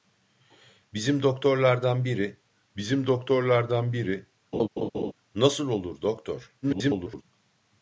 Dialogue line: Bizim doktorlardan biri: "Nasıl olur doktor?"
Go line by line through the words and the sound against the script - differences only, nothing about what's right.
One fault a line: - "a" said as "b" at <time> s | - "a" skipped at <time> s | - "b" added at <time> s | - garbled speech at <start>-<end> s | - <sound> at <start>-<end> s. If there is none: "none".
- "bizim doktorlardan biri" added at 2.8 s
- laugh at 4.5-5.1 s
- garbled speech at 6.6-7.2 s